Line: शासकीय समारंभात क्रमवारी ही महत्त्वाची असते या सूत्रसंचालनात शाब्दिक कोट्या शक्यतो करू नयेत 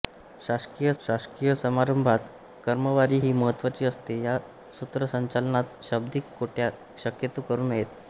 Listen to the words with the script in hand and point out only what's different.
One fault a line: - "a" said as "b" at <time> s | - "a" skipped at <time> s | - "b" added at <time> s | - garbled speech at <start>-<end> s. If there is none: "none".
- "शासकीय" added at 1.0 s